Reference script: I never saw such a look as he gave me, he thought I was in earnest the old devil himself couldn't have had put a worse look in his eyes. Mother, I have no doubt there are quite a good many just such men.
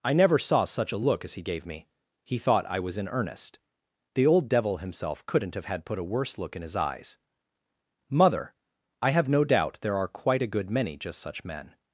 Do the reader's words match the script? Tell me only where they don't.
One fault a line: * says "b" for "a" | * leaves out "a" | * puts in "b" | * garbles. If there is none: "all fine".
all fine